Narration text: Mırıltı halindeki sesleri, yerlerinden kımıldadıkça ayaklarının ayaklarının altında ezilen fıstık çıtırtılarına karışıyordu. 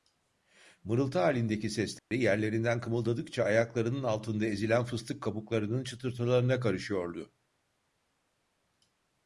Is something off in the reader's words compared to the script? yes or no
yes